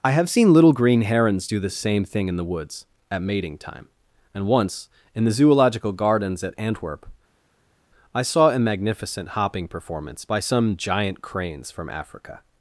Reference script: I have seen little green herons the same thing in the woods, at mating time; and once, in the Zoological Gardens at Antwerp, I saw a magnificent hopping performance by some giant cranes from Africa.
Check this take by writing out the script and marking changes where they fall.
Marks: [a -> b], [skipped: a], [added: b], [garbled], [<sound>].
I have seen little green herons [added: do] the same thing in the woods, at mating time; and once, in the Zoological Gardens at Antwerp, I saw a magnificent hopping performance by some giant cranes from Africa.